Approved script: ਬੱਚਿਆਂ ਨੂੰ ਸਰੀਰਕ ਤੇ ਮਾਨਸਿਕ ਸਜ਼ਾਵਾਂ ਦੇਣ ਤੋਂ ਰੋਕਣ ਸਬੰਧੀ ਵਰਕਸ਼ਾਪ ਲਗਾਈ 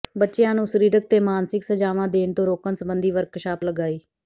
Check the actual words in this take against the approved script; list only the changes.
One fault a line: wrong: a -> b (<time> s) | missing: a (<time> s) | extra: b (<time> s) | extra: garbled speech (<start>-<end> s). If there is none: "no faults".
no faults